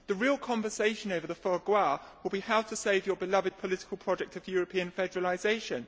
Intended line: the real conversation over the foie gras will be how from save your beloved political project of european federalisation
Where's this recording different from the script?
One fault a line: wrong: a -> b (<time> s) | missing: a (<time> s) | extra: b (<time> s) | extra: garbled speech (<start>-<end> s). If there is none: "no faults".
wrong: from -> to (2.6 s)